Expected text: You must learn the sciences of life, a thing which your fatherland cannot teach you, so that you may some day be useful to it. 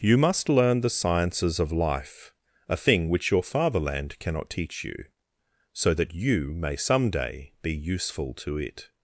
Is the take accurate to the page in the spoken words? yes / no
yes